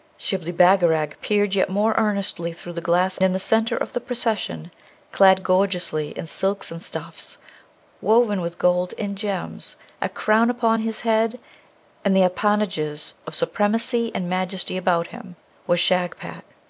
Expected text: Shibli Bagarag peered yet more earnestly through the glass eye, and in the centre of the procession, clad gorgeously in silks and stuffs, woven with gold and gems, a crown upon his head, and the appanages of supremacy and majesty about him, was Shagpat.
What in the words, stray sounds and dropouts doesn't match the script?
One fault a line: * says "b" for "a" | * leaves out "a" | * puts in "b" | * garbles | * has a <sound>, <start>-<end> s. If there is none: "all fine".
* leaves out "eye and"